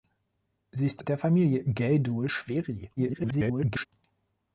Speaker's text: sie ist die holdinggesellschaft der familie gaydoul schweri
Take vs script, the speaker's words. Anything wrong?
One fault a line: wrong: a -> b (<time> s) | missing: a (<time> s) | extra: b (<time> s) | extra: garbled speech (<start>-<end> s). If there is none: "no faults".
missing: die holdinggesellschaft (1.0 s)
extra: garbled speech (3.0-3.9 s)